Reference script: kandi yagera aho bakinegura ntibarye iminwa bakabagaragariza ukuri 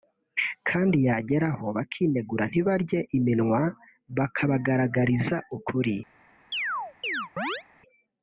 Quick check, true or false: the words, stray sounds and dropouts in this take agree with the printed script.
false